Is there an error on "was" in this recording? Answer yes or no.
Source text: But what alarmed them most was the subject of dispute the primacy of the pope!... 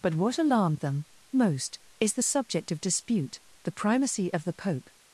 yes